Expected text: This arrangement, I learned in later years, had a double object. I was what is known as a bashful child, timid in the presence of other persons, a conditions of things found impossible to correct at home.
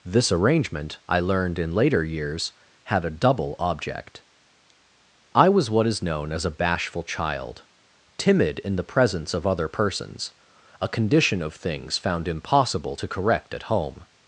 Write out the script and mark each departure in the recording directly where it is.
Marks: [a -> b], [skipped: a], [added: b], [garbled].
This arrangement, I learned in later years, had a double object. I was what is known as a bashful child, timid in the presence of other persons, a [conditions -> condition] of things found impossible to correct at home.